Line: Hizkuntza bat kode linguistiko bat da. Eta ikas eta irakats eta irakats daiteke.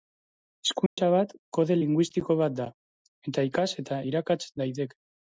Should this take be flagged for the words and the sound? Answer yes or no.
yes